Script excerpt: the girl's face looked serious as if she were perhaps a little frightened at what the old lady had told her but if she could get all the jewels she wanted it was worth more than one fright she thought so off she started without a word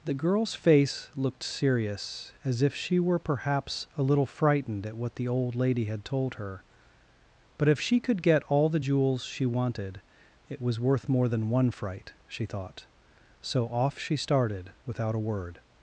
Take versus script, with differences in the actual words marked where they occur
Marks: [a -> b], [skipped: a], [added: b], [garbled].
the girl's face looked serious as if she were perhaps a little frightened at what the old lady had told her but if she could get all the jewels she wanted it was worth more than one fright she thought so off she started without a word